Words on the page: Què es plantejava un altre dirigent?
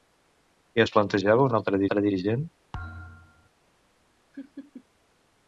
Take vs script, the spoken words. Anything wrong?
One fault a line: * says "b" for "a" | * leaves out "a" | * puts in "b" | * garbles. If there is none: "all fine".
* puts in "altre"